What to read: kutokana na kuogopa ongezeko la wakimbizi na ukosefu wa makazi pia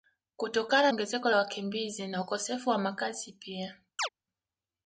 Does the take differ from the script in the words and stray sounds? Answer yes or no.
yes